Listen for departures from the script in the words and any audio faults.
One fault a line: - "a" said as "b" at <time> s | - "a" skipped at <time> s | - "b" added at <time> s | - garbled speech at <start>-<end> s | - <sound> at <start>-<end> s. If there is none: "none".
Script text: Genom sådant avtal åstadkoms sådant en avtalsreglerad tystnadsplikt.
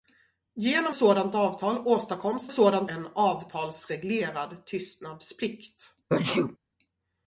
- sneeze at 6.1-6.6 s